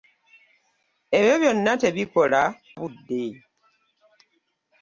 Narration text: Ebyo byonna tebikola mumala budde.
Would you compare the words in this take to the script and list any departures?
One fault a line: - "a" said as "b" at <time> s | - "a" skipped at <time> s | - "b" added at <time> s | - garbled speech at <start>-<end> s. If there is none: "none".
- "mumala" skipped at 2.4 s